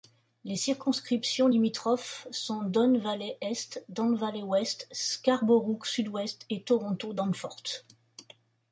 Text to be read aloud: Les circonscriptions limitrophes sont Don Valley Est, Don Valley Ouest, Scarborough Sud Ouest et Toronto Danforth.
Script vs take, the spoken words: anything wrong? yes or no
no